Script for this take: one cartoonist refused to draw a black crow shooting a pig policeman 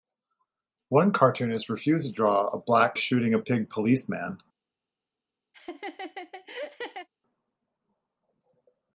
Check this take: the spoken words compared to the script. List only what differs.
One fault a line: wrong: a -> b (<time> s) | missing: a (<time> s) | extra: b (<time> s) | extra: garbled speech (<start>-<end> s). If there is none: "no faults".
missing: crow (3.0 s)